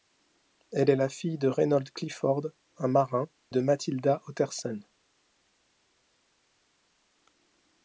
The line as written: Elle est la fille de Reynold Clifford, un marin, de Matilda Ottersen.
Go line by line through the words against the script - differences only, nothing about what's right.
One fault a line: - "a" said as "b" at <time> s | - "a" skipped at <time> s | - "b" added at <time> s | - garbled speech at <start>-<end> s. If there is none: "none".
none